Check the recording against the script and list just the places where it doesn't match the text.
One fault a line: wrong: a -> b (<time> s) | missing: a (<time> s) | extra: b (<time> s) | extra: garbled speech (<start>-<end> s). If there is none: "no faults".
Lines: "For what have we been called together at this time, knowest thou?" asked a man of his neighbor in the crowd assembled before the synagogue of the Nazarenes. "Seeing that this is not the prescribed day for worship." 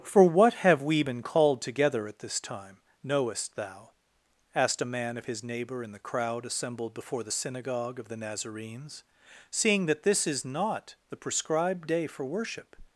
no faults